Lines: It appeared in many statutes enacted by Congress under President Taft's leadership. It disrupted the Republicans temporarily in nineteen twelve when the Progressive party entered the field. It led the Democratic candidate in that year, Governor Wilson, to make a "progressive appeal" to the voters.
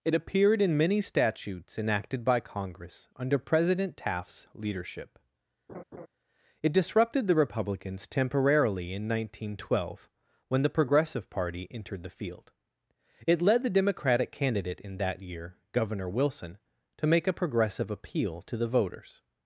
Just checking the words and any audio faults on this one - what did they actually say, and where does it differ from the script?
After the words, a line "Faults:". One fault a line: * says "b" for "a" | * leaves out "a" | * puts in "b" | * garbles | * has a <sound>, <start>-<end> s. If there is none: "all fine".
It appeared in many statutes enacted by Congress under President Taft's leadership. It disrupted the Republicans temporarily in nineteen twelve when the Progressive party entered the field. It led the Democratic candidate in that year, Governor Wilson, to make a "progressive appeal" to the voters.
Faults:
* has a laugh, 5.7-6.1 s